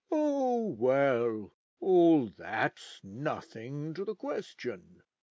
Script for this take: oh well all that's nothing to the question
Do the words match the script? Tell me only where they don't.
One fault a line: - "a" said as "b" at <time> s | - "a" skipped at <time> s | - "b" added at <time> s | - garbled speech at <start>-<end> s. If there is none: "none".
none